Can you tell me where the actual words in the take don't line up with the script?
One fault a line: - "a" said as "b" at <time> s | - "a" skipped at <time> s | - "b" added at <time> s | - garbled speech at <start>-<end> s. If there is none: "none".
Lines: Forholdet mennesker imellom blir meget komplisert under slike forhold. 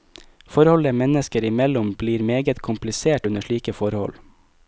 none